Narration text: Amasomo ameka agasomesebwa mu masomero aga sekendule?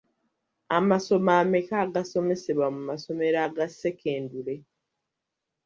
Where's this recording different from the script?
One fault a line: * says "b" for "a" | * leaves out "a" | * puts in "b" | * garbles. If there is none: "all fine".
all fine